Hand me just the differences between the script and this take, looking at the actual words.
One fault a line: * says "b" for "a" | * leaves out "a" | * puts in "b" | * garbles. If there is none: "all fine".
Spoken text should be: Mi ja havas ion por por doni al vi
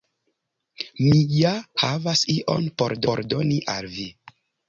all fine